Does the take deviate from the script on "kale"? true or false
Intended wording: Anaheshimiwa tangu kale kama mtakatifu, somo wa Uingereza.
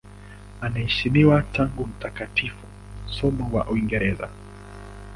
true